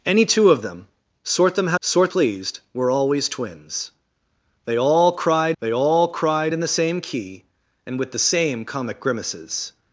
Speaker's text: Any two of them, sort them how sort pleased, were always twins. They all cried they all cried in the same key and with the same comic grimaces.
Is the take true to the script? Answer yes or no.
yes